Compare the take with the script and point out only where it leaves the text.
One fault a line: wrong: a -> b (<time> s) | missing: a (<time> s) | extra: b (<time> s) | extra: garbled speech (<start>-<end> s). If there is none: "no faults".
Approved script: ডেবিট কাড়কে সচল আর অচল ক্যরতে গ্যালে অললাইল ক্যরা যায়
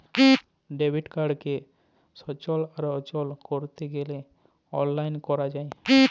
no faults